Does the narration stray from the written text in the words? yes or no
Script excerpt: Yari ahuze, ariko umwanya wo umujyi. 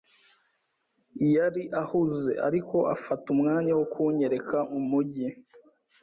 yes